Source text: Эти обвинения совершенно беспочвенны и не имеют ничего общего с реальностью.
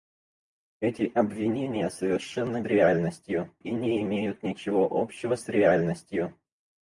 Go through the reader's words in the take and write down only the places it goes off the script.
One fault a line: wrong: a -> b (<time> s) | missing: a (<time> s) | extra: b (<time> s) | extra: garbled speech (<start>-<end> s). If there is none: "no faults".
wrong: беспочвенны -> реальностью (2.7 s)